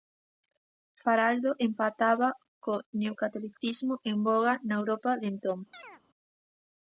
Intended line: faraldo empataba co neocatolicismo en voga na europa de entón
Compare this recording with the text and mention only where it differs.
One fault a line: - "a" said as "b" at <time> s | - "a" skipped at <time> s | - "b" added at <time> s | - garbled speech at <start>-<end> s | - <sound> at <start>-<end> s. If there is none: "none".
- chirp at 5.7-6.0 s